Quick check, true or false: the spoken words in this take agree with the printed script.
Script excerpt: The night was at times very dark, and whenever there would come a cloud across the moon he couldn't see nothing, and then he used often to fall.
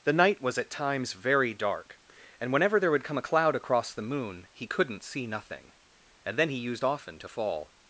true